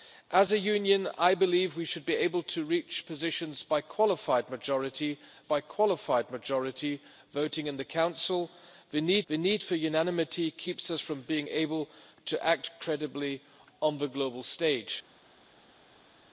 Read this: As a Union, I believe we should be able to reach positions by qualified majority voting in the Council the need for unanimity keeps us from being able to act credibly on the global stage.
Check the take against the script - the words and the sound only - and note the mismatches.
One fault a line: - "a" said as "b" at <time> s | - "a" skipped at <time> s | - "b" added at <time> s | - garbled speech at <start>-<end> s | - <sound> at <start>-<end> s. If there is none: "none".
- "by qualified majority" added at 5.4 s
- "the need" added at 9.3 s